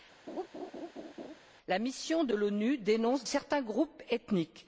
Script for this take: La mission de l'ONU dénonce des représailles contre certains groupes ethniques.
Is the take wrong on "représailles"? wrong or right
wrong